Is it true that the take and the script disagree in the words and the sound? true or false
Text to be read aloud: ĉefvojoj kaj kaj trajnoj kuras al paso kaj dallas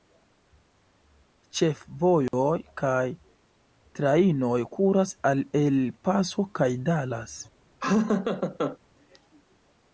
true